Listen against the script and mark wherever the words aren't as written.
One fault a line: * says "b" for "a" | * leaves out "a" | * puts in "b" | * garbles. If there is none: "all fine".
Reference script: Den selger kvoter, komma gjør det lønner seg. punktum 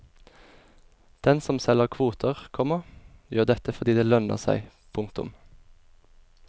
* puts in "som"
* puts in "dette fordi"